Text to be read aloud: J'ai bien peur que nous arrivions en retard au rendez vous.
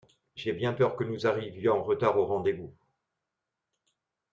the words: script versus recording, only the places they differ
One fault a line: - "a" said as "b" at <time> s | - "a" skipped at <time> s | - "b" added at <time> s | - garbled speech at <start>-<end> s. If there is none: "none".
none